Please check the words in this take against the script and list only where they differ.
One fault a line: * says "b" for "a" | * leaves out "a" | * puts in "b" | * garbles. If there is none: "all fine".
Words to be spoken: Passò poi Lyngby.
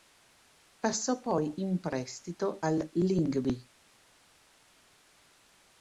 * puts in "in prestito al"